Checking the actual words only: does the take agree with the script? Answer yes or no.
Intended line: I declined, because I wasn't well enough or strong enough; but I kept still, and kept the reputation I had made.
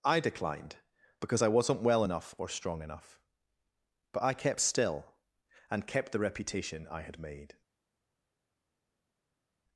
yes